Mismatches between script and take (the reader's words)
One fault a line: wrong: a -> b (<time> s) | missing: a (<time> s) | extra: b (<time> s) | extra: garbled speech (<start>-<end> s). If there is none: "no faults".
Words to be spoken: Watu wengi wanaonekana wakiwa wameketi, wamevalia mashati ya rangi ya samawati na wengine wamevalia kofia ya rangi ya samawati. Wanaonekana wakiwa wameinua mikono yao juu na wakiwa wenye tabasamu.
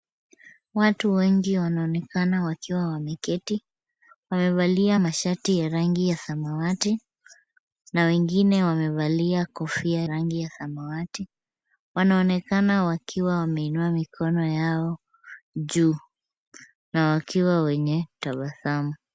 missing: ya (10.0 s)